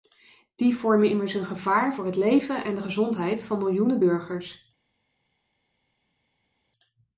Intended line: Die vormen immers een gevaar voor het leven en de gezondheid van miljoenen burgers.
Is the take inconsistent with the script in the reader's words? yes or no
no